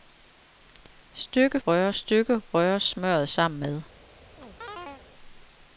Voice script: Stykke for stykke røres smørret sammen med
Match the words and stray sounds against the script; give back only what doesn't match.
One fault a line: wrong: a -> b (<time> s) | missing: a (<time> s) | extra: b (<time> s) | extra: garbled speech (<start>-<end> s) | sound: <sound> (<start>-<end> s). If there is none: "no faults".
wrong: for -> røres (1.7 s)
sound: chirp (4.4-5.1 s)